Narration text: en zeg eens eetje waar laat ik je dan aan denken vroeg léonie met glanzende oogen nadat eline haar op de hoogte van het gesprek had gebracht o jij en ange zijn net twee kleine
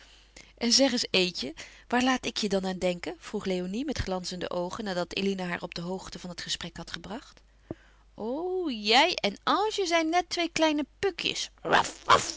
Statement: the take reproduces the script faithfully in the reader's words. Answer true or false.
true